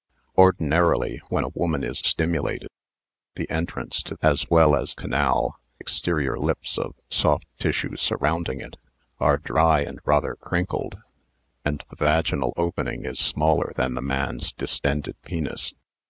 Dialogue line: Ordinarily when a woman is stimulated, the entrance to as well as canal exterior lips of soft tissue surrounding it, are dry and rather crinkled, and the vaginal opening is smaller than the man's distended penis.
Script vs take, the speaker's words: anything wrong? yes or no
no